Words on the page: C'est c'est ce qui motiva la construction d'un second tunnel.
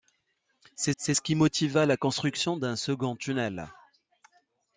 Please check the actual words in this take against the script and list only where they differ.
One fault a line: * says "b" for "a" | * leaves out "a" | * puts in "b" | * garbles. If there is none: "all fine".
all fine